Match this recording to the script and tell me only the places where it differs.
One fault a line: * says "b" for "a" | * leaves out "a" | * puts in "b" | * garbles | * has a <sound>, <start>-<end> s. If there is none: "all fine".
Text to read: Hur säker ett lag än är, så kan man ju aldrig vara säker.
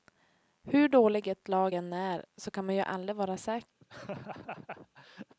* says "dåligt" for "säker"
* has a laugh, 3.8-5.3 s